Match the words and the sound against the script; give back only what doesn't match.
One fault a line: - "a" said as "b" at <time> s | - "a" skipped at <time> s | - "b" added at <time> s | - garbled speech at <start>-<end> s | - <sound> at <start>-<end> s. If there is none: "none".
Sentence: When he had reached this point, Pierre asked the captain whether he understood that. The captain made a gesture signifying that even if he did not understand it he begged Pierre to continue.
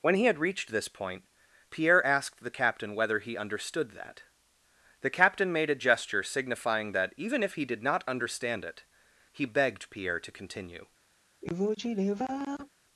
- sigh at 11.4-12.7 s